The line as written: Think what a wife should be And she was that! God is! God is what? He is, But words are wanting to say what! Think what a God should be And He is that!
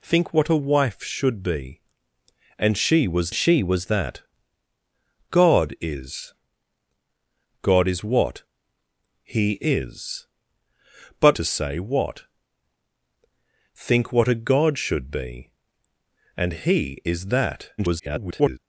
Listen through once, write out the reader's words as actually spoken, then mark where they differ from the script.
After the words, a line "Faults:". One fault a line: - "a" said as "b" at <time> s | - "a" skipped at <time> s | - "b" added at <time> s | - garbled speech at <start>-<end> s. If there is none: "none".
Think what a wife should be And she was she was that! God is! God is what? He is, But to say what! Think what a God should be And He is that! [garbled]
Faults:
- "she was" added at 3.3 s
- "words are wanting" skipped at 11.4 s
- garbled speech at 17.8-18.6 s